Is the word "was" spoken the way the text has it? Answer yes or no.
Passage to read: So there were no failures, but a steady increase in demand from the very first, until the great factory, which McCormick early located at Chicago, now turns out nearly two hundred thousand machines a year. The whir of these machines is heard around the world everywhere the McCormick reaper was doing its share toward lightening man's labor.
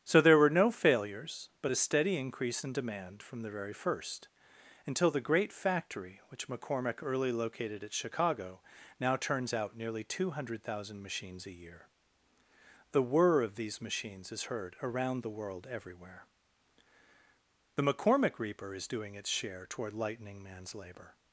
no